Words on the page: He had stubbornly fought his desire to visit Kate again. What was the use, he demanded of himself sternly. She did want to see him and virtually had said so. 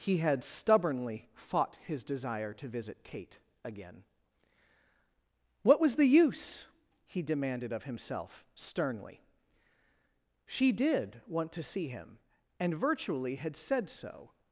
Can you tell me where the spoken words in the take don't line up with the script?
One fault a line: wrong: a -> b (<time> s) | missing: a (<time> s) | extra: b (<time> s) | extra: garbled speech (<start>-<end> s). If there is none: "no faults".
no faults